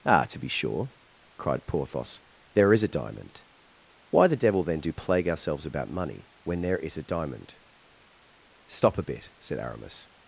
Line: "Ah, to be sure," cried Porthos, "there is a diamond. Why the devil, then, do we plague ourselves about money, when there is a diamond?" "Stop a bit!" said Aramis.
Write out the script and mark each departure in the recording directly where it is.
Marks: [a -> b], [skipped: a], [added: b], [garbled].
"Ah, to be sure," cried Porthos, "there is a diamond. Why the devil, then, do [skipped: we] plague ourselves about money, when there is a diamond?" "Stop a bit!" said Aramis.